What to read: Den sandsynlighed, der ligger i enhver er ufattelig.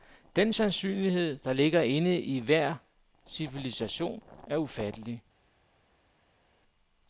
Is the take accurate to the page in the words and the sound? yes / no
no